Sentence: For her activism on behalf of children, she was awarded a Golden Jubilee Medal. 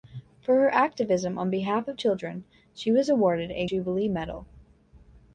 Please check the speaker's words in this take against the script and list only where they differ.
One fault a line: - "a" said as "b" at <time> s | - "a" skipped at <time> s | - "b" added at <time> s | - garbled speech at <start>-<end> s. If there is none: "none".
- "Golden" skipped at 3.7 s